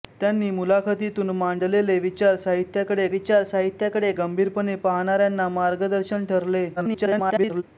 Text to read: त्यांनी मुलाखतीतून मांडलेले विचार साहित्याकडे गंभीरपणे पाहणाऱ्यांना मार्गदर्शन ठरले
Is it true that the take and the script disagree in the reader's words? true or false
true